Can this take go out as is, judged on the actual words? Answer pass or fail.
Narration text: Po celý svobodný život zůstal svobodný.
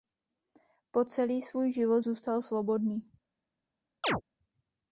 fail